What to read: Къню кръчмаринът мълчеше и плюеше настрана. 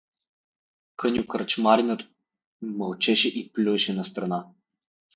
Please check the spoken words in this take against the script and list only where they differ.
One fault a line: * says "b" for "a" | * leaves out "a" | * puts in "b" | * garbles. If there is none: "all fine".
all fine